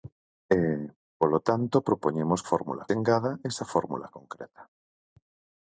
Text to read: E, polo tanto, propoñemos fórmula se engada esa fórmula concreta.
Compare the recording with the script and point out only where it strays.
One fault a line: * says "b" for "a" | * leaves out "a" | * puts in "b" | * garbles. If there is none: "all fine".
all fine